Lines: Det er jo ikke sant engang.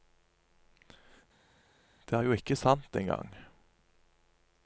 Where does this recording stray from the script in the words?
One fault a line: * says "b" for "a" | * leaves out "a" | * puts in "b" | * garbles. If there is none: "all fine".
all fine